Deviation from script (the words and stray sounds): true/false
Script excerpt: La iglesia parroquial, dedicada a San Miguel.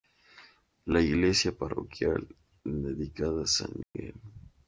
true